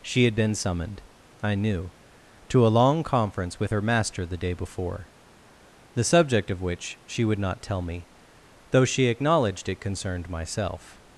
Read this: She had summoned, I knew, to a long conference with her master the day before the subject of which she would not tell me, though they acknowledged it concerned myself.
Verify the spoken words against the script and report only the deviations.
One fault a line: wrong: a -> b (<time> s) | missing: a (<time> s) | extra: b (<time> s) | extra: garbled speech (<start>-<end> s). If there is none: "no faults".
extra: been (0.3 s)
wrong: they -> she (8.8 s)